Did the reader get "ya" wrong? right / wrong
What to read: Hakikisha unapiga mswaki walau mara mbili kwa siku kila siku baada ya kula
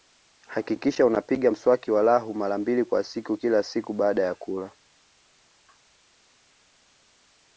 right